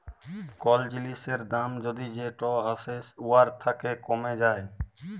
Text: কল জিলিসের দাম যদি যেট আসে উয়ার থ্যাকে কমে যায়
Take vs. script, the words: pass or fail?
pass